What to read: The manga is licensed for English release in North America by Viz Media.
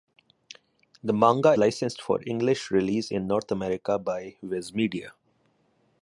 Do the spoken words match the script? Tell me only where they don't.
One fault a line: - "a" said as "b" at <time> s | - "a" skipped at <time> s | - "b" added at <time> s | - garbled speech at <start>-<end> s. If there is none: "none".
- "is" skipped at 1.5 s